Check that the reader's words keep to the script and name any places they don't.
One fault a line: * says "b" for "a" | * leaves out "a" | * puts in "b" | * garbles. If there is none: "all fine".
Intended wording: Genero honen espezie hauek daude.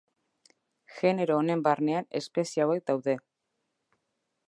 * puts in "barnean"